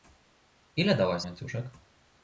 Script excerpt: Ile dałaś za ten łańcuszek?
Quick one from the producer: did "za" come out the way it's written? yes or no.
no